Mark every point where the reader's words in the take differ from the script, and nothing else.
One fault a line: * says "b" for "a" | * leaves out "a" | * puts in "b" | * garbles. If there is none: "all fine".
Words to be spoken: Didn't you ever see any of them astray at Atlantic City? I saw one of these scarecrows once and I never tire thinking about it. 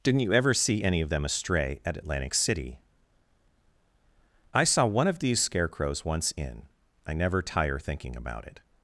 * says "in" for "and"